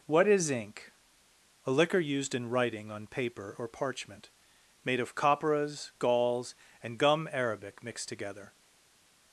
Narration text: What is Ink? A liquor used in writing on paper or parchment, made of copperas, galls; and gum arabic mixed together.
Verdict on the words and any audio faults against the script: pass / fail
pass